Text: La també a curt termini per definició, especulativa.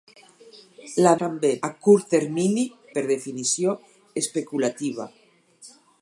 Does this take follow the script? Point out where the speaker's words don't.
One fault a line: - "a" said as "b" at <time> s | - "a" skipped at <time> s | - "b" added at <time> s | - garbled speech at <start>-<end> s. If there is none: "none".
none